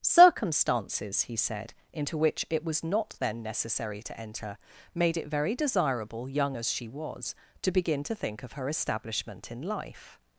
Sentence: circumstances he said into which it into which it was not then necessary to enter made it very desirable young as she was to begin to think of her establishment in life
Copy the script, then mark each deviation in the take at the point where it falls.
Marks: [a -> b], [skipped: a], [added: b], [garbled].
circumstances he said into which it [skipped: into which it] was not then necessary to enter made it very desirable young as she was to begin to think of her establishment in life